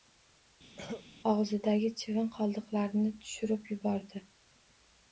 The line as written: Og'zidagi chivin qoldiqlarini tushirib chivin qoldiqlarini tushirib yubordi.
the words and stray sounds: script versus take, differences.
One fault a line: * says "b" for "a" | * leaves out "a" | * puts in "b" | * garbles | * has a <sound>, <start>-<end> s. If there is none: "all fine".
* has a cough, 0.8-1.1 s
* leaves out "chivin qoldiqlarini tushirib"